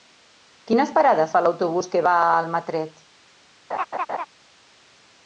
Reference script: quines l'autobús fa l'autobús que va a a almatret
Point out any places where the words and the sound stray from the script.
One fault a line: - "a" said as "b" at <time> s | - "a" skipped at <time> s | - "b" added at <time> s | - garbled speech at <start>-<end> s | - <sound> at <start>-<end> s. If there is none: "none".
- "l'autobús" said as "parades" at 0.9 s
- "a" skipped at 2.3 s
- laugh at 3.7-4.3 s